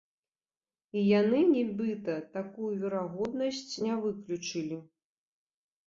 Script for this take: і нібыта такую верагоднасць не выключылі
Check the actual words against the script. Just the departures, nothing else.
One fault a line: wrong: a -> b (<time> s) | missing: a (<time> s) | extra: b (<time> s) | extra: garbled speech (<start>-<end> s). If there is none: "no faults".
extra: яны (1.2 s)